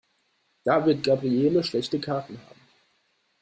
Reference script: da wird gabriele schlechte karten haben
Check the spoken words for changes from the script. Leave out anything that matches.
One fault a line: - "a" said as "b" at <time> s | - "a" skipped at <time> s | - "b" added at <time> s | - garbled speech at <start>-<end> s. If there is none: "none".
none